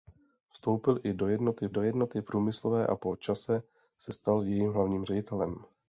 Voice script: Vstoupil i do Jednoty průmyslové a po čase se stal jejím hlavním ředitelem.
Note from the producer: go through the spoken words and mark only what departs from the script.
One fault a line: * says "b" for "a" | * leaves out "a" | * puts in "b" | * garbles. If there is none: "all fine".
* puts in "do Jednoty"